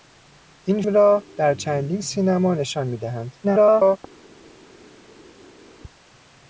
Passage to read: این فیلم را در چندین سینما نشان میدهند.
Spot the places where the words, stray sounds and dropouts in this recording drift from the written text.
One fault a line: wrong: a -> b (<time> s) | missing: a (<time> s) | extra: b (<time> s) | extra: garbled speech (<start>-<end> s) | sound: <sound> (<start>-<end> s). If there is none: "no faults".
missing: فیلم (0.8 s)
extra: garbled speech (3.4-4.0 s)